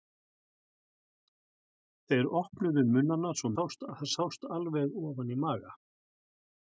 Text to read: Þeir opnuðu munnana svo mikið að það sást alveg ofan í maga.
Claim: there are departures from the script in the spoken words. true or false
true